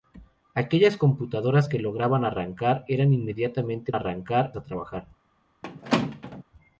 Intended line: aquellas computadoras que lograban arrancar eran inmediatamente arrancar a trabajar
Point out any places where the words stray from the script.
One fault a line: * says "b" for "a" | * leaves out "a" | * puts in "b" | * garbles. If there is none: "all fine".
all fine